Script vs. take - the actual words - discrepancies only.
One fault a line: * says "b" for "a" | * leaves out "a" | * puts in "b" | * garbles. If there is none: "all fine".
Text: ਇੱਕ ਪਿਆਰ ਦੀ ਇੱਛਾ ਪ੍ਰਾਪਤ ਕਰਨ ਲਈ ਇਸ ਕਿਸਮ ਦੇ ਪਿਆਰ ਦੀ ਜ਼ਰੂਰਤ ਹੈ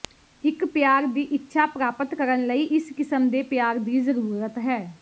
all fine